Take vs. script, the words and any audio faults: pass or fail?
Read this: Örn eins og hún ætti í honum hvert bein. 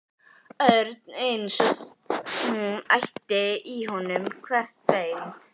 pass